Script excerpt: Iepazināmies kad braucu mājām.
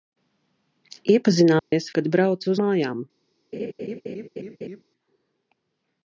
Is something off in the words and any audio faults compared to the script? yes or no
yes